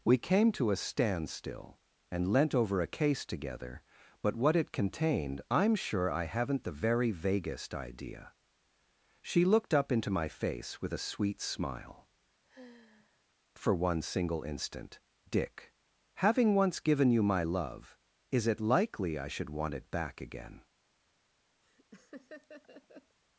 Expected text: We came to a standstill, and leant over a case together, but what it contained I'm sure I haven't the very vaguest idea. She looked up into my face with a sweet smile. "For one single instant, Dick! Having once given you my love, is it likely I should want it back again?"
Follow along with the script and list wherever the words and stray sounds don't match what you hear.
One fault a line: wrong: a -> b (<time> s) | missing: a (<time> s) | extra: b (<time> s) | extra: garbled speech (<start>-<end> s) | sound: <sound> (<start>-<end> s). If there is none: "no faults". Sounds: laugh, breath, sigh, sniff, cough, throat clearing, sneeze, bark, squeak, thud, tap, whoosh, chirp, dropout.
sound: sigh (12.4-13.3 s)
sound: laugh (21.6-23.2 s)